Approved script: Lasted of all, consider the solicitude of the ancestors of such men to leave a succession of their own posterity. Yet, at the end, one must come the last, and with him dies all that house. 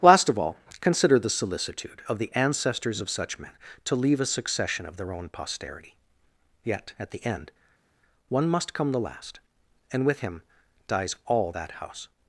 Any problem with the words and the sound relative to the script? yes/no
yes